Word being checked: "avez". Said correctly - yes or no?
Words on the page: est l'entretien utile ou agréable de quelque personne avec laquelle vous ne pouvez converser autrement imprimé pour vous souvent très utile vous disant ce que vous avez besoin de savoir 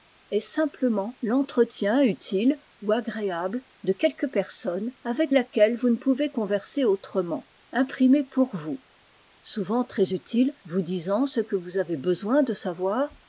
yes